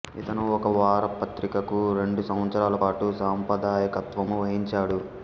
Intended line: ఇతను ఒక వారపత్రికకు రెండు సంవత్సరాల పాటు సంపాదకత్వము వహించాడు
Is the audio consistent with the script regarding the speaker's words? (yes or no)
yes